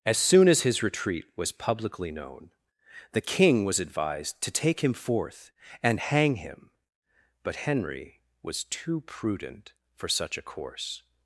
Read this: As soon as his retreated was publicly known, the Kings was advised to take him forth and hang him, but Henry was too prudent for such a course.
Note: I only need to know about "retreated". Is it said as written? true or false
false